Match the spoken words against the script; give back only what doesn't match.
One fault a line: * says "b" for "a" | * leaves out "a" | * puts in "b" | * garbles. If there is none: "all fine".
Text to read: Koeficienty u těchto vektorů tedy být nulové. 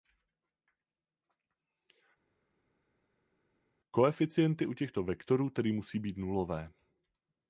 * puts in "musí"